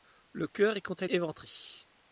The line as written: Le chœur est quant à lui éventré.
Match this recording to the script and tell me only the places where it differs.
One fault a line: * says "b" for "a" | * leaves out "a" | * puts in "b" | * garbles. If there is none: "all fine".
* leaves out "lui"